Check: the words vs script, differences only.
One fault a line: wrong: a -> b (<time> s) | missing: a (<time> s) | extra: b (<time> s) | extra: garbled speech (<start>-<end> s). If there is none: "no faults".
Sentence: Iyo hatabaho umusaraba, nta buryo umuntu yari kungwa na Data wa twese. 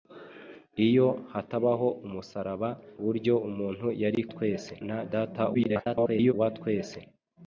missing: nta (2.7 s)
wrong: kungwa -> twese (4.3 s)
extra: garbled speech (5.5-6.3 s)